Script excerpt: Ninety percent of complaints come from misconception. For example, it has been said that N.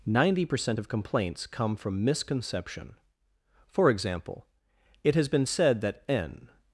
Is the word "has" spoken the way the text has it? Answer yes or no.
yes